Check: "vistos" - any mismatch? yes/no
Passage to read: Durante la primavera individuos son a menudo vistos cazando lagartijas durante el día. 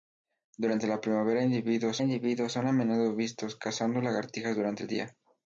no